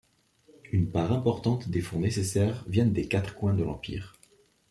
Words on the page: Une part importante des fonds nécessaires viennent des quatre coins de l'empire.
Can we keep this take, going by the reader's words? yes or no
yes